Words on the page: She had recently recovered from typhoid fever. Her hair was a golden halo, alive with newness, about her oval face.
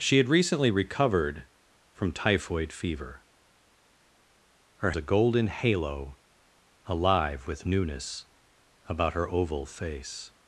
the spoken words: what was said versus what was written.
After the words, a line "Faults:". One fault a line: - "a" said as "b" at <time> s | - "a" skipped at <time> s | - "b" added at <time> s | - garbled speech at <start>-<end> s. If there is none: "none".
She had recently recovered from typhoid fever. Her a golden halo, alive with newness, about her oval face.
Faults:
- "hair was" skipped at 4.9 s